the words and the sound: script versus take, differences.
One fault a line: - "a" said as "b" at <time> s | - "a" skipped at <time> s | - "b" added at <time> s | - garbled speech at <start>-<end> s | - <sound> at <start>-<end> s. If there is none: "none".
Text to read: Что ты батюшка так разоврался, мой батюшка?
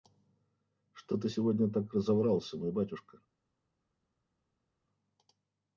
- "батюшка" said as "сегодня" at 1.3 s